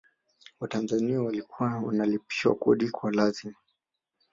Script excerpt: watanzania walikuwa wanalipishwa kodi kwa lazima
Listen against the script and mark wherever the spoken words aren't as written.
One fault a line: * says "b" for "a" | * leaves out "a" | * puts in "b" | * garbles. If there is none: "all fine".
all fine